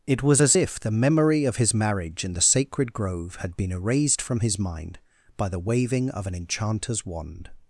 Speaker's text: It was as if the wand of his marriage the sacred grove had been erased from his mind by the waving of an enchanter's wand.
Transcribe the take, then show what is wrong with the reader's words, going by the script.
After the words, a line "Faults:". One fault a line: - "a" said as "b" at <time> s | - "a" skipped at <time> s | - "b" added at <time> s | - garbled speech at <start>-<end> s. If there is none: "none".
It was as if the memory of his marriage in the sacred grove had been erased from his mind by the waving of an enchanter's wand.
Faults:
- "wand" said as "memory" at 0.9 s
- "in" added at 2.2 s